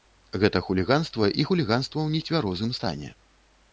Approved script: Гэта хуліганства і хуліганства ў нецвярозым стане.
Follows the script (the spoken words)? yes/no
yes